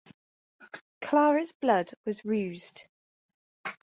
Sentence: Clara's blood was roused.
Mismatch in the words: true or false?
false